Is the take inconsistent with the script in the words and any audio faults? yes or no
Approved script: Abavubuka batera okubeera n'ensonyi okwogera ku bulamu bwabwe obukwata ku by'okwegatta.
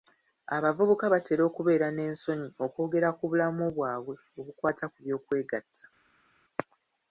no